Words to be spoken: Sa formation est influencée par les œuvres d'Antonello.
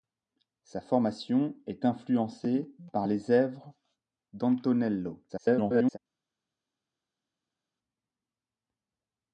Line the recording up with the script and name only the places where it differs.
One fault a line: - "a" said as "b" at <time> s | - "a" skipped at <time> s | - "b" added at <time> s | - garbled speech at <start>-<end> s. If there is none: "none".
- garbled speech at 5.3-6.0 s